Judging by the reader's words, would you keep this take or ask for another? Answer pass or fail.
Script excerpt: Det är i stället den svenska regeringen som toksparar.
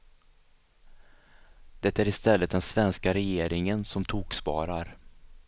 pass